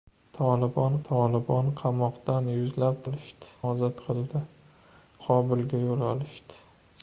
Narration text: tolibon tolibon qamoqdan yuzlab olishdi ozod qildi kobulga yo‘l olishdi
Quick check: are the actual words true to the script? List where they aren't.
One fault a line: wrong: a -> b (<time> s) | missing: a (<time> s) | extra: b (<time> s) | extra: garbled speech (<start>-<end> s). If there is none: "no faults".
no faults